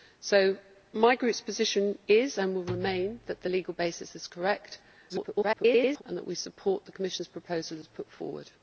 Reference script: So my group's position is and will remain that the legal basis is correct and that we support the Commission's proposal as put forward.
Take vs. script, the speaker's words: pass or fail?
fail